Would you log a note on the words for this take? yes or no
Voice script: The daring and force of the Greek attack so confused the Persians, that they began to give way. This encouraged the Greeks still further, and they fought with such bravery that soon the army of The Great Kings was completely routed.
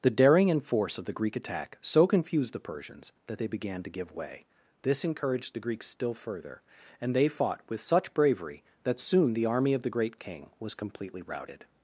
yes